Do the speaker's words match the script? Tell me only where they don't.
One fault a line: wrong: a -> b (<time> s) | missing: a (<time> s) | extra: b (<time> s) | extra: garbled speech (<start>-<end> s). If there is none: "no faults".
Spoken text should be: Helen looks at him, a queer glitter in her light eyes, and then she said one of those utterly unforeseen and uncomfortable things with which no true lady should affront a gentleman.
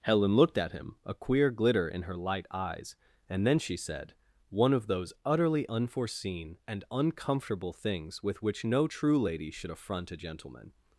wrong: looks -> looked (0.3 s)